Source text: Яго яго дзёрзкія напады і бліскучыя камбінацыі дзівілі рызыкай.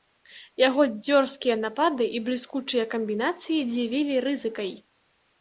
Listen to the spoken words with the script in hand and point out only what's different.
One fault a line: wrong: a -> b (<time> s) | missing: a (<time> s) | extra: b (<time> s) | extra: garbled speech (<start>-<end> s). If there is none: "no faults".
missing: яго (0.8 s)